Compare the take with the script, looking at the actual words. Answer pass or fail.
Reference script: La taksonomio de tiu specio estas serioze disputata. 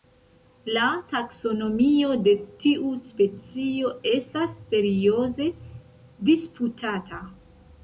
pass